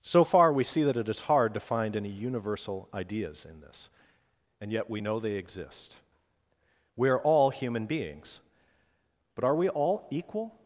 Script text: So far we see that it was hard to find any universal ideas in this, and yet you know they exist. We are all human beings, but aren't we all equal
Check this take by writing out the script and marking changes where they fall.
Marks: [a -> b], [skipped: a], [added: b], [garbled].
So far we see that it [was -> is] hard to find any universal ideas in this, and yet [you -> we] know they exist. We are all human beings, but [aren't -> are] we all equal